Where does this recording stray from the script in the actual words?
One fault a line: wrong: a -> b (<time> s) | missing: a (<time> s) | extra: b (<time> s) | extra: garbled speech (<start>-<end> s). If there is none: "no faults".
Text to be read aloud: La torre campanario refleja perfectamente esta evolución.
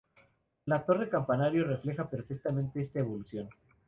no faults